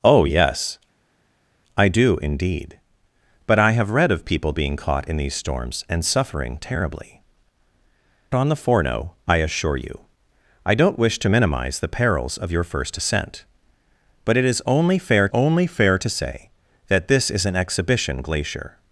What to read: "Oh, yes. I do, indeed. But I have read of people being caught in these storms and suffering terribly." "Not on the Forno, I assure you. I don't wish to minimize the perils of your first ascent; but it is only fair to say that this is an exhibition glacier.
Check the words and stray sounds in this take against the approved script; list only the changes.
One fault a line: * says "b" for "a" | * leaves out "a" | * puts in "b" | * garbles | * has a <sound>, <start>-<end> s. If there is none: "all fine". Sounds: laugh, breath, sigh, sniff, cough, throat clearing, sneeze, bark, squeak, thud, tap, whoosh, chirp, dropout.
* leaves out "Not"
* puts in "only fair"